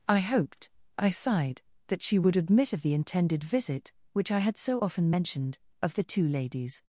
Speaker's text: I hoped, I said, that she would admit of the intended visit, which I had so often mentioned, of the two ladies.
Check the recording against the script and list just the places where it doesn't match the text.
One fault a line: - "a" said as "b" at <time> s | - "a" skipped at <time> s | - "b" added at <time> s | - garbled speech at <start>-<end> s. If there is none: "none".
- "said" said as "sighed" at 1.1 s